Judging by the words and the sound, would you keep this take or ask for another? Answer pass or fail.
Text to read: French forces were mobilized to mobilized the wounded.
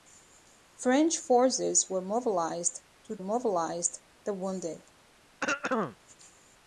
fail